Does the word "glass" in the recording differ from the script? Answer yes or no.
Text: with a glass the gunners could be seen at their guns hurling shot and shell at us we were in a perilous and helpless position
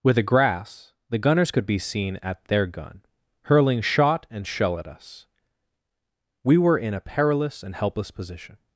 yes